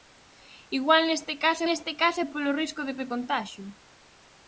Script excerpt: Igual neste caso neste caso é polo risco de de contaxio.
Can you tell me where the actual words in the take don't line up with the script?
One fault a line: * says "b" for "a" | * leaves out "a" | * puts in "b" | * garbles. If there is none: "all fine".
all fine